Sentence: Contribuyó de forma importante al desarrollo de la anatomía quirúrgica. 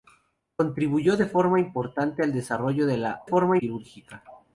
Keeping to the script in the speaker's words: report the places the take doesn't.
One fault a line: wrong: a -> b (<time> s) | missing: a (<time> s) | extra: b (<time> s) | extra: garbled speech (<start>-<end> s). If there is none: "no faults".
wrong: anatomía -> forma (3.2 s)